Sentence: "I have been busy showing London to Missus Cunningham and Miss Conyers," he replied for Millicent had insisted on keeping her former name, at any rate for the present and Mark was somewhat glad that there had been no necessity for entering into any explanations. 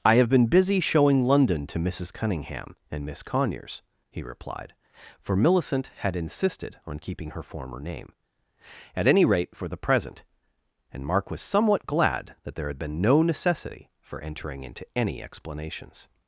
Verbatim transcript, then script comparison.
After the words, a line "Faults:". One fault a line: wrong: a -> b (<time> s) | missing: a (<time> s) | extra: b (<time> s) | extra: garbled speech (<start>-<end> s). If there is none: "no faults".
"I have been busy showing London to Missus Cunningham and Miss Conyers," he replied for Millicent had insisted on keeping her former name, at any rate for the present and Mark was somewhat glad that there had been no necessity for entering into any explanations.
Faults:
no faults